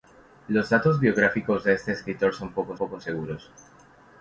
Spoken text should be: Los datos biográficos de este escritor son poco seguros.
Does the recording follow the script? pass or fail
fail